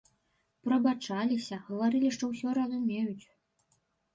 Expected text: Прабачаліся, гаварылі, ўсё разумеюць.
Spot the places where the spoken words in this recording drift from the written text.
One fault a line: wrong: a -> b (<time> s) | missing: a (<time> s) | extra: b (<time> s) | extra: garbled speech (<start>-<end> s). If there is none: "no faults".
extra: што (2.2 s)